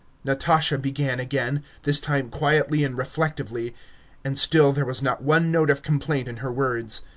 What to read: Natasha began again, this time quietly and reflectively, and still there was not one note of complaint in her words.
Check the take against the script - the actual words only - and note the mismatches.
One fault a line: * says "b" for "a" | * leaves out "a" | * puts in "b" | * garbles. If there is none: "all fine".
all fine